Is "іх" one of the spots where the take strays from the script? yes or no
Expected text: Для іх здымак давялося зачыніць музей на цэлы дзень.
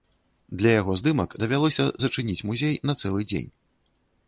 yes